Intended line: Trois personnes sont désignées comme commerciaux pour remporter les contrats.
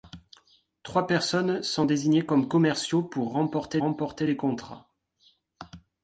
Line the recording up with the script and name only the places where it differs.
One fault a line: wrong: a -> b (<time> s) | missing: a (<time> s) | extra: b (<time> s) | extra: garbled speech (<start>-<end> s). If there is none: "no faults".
extra: remporter (3.8 s)